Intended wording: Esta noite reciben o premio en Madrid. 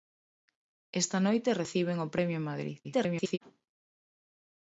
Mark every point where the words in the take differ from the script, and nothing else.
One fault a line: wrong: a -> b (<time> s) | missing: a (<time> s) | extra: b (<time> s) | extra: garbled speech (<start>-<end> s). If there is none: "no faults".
extra: garbled speech (2.8-3.4 s)